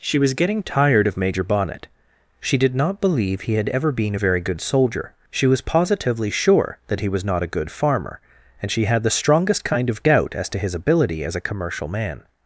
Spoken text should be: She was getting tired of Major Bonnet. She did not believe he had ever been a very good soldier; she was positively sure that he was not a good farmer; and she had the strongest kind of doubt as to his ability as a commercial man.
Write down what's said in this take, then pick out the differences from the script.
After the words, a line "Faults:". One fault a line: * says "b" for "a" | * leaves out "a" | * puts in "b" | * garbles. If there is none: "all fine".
She was getting tired of Major Bonnet. She did not believe he had ever been a very good soldier; she was positively sure that he was not a good farmer; and she had the strongest kind of doubt as to his ability as a commercial man.
Faults:
all fine